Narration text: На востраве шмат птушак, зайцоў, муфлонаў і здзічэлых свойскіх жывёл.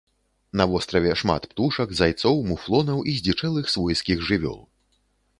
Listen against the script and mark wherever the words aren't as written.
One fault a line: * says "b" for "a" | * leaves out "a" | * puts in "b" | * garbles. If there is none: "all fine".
all fine